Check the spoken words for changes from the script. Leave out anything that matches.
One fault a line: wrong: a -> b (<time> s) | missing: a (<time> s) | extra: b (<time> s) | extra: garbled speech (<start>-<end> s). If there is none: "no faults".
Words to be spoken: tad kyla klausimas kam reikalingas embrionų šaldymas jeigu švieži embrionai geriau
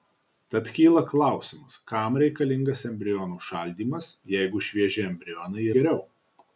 no faults